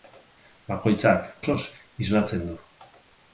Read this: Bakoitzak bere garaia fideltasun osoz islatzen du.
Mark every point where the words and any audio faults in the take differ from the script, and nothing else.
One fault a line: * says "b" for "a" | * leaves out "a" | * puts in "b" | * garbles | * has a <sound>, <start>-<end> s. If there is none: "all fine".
* leaves out "bere garaia fideltasun"